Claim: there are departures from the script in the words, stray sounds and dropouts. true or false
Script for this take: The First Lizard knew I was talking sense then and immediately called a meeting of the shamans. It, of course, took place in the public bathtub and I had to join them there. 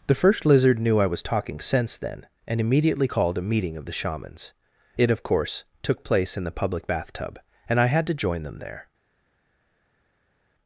false